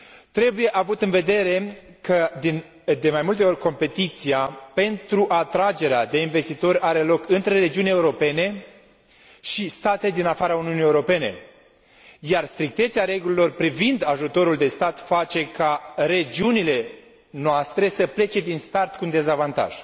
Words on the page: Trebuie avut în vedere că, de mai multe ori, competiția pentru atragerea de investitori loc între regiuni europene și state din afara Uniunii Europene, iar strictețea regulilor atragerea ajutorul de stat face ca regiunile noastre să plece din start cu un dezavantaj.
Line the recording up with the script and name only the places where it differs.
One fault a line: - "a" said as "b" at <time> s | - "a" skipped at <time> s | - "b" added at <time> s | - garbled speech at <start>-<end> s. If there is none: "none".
- "are" added at 6.8 s
- "atragerea" said as "privind" at 13.5 s